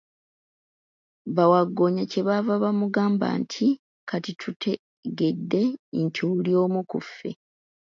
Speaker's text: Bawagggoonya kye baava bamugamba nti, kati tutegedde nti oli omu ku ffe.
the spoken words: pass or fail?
pass